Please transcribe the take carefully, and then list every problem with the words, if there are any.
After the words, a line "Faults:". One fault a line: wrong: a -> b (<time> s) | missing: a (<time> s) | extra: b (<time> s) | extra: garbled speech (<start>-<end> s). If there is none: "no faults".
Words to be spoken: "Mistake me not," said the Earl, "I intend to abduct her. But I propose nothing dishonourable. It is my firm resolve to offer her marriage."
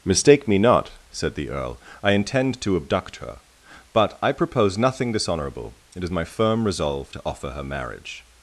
"Mistake me not," said the Earl, "I intend to abduct her. But I propose nothing dishonourable. It is my firm resolve to offer her marriage."
Faults:
no faults